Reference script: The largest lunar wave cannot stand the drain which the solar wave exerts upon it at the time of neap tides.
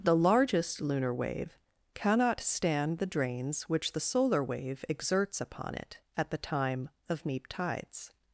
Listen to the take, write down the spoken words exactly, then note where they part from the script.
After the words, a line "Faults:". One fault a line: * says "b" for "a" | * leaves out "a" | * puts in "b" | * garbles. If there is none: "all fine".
The largest lunar wave cannot stand the drains which the solar wave exerts upon it at the time of neap tides.
Faults:
* says "drains" for "drain"